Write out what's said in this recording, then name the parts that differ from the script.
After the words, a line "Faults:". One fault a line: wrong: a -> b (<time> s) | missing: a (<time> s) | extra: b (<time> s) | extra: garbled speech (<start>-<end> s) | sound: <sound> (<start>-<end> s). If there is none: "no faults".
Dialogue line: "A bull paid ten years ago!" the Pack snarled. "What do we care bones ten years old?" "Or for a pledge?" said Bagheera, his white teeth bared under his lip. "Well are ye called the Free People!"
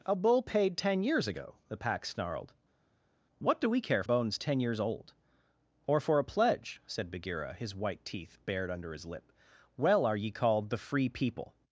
"A bull paid ten years ago!" the Pack snarled. "What do we care bones ten years old?" "Or for a pledge?" said Bagheera, his white teeth bared under his lip. "Well are ye called the Free People!"
Faults:
no faults